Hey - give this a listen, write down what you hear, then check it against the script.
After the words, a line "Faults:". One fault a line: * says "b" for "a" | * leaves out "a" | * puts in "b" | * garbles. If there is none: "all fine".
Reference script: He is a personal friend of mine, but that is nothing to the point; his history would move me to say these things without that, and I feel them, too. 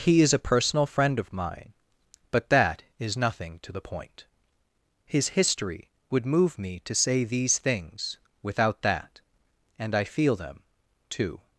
He is a personal friend of mine, but that is nothing to the point; his history would move me to say these things without that, and I feel them, too.
Faults:
all fine